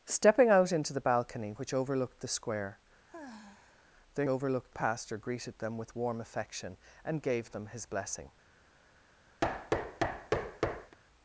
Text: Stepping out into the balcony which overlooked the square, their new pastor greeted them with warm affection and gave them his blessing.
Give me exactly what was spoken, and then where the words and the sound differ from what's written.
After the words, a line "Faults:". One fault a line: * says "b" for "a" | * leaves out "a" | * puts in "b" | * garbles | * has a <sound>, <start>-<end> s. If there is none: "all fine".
Stepping out into the balcony which overlooked the square, their overlooked pastor greeted them with warm affection and gave them his blessing.
Faults:
* has a sigh, 3.1-3.9 s
* says "overlooked" for "new"
* has a thud, 9.4-11.0 s